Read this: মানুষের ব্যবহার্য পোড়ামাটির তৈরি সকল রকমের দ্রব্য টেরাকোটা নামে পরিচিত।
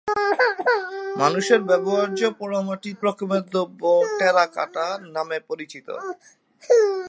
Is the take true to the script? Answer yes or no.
no